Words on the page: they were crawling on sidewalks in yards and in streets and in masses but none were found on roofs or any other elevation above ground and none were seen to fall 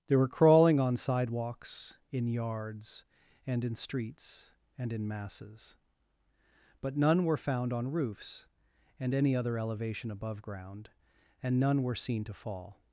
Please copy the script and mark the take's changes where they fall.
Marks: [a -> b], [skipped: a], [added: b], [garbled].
they were crawling on sidewalks in yards and in streets and in masses but none were found on roofs [or -> and] any other elevation above ground and none were seen to fall